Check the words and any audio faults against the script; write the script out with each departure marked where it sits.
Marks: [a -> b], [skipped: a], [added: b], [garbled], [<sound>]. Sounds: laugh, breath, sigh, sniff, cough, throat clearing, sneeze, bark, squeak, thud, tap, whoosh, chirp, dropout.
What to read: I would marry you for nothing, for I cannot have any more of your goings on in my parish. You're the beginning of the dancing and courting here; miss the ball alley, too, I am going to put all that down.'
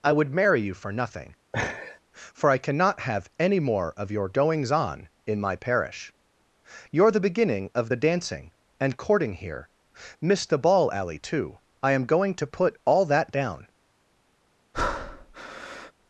I would marry you for nothing, [laugh] for I cannot have any more of your goings on in my parish. You're the beginning of the dancing and courting here; miss the ball alley, too, I am going to put all that down.' [breath]